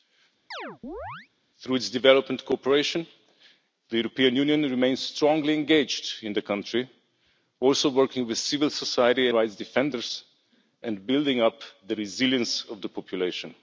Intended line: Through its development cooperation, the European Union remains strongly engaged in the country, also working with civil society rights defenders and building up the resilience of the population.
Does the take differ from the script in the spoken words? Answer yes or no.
no